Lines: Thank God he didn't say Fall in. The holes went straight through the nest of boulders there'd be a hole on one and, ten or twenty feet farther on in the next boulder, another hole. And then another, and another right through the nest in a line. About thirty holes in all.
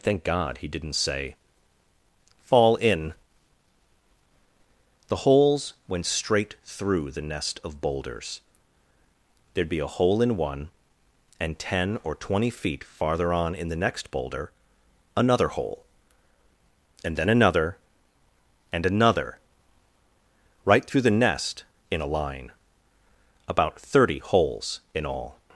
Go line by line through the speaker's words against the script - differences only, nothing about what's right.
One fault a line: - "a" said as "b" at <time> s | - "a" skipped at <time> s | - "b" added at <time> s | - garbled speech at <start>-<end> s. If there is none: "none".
- "on" said as "in" at 10.2 s